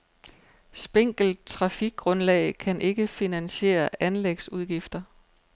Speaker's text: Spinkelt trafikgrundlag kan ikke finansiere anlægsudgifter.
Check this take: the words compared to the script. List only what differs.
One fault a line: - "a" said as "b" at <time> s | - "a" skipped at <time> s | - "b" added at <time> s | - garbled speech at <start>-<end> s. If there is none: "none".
none